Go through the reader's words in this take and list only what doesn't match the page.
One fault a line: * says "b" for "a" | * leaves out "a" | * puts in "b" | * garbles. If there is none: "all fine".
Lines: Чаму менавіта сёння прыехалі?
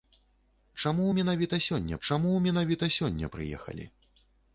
* puts in "чаму менавіта сёння"